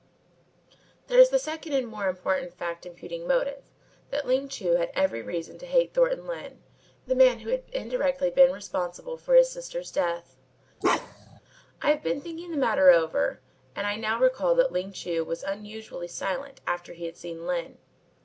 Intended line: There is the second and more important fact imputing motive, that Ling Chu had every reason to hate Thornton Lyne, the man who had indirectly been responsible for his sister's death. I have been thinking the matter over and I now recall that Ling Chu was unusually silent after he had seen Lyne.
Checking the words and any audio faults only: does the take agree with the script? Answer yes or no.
no